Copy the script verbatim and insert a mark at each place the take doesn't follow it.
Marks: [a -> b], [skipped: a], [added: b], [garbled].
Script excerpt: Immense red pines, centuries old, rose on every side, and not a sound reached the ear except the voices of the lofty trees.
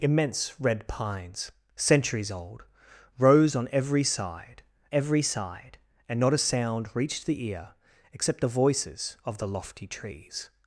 Immense red pines, centuries old, rose on every side, [added: every side] and not a sound reached the ear except the voices of the lofty trees.